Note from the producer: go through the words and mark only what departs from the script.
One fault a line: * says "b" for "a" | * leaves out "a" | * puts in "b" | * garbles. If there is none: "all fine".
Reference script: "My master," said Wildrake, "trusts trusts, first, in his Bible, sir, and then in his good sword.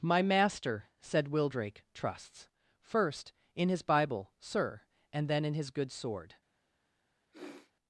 * leaves out "trusts"